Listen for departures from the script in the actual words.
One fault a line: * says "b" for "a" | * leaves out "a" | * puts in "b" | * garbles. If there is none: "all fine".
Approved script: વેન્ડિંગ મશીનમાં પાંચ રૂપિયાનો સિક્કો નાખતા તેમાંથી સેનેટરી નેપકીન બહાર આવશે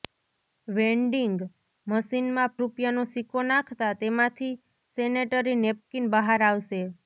* leaves out "પાંચ"